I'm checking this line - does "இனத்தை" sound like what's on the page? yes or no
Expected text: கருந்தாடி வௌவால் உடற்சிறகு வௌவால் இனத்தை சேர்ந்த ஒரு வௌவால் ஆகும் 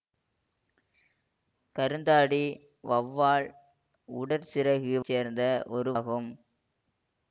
no